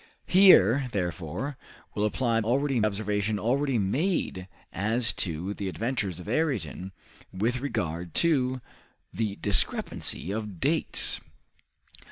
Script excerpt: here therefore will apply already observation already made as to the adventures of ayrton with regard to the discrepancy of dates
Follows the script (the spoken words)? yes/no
yes